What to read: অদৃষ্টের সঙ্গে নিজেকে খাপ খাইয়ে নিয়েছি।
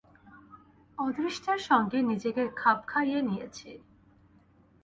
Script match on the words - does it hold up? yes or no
yes